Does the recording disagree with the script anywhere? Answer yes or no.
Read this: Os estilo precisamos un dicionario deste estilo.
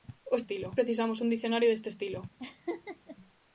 no